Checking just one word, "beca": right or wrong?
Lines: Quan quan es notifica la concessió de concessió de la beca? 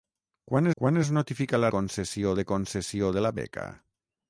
right